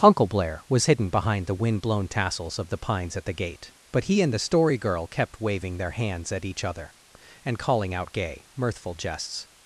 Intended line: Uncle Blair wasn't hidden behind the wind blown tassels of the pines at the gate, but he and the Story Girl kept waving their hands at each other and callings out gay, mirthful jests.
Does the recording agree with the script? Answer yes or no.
no